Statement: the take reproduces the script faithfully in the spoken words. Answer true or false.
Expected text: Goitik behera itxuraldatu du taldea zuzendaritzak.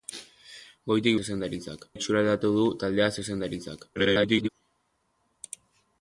false